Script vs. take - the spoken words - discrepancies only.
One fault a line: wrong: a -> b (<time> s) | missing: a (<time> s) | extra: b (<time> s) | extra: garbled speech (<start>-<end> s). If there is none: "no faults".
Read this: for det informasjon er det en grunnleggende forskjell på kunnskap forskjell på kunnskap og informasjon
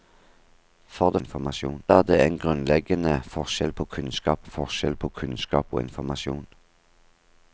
no faults